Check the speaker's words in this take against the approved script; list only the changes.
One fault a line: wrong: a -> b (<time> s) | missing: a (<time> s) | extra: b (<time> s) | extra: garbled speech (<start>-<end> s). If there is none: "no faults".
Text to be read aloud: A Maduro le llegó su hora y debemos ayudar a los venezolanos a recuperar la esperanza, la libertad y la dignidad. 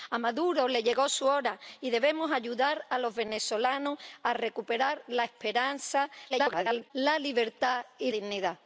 extra: garbled speech (6.3-6.9 s)
missing: la (8.1 s)